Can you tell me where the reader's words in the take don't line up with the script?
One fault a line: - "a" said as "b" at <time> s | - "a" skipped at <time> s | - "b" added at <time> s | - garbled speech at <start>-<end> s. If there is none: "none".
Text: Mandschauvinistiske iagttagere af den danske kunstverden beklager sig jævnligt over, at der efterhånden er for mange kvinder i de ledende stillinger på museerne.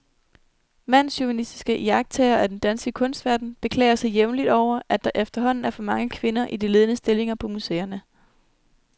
none